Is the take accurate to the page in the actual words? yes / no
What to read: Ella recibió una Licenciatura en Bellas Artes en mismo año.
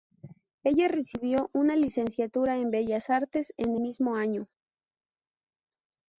yes